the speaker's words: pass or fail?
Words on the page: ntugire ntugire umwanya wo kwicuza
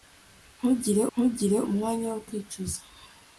pass